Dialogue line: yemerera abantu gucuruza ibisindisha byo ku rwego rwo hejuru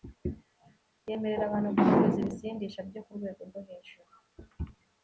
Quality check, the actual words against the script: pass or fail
pass